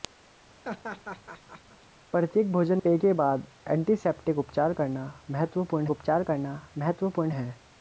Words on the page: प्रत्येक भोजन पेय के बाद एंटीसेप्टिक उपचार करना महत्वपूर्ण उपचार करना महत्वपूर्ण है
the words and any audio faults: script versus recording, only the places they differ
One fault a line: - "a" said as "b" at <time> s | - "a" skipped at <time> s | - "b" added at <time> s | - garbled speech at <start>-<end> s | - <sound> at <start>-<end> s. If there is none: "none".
- laugh at 0.6-1.9 s